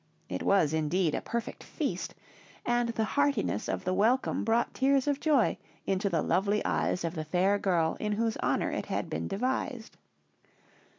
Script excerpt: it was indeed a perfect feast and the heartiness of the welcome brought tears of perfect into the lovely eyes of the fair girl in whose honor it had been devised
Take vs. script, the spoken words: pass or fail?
fail